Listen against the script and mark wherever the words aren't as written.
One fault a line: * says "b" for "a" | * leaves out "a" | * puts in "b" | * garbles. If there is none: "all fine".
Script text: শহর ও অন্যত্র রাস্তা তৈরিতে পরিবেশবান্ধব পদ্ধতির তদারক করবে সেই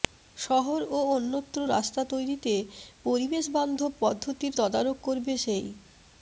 all fine